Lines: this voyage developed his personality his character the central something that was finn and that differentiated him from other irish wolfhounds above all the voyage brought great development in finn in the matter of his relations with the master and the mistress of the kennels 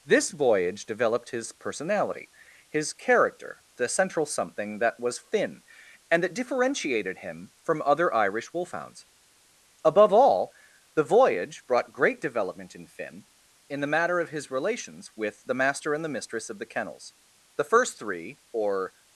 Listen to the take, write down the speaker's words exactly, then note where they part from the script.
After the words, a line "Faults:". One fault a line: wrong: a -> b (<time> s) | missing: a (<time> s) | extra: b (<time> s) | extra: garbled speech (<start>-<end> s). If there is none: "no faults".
this voyage developed his personality his character the central something that was finn and that differentiated him from other irish wolfhounds above all the voyage brought great development in finn in the matter of his relations with the master and the mistress of the kennels the first three or
Faults:
extra: the first three or (17.6 s)